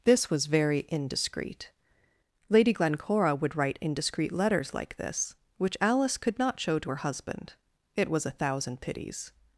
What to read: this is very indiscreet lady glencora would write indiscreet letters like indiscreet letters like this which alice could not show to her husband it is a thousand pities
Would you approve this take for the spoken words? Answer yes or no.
no